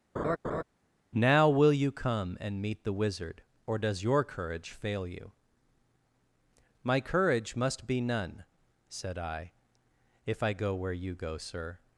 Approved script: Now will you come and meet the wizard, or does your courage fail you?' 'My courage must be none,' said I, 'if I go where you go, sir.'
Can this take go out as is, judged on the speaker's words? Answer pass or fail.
pass